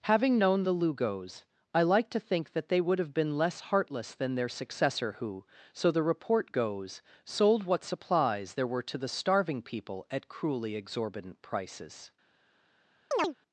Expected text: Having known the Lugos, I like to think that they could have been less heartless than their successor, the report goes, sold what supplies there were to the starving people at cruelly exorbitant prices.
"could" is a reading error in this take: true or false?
true